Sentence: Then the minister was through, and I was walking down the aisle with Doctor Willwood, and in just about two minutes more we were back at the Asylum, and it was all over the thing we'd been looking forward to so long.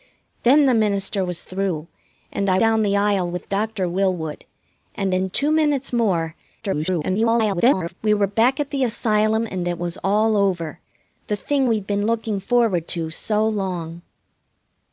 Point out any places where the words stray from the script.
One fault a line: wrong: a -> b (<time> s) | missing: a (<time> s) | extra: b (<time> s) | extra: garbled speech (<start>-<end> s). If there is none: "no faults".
missing: was walking (2.6 s)
missing: just about (5.3 s)
extra: garbled speech (6.6-7.9 s)